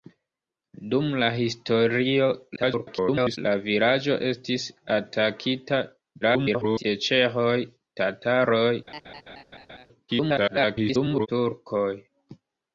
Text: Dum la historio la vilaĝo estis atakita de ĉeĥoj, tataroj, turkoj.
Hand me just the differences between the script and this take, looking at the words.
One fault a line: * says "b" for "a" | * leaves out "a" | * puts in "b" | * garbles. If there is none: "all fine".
* garbles
* garbles
* garbles